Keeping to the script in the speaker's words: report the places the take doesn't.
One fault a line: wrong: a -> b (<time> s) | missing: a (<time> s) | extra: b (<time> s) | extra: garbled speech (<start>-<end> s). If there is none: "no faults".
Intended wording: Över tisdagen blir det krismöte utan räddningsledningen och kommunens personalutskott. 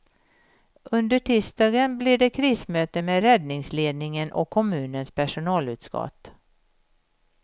wrong: Över -> Under (0.9 s)
wrong: utan -> med (3.0 s)